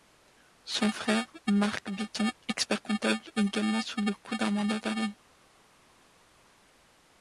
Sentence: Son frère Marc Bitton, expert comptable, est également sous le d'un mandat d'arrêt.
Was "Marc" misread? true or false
false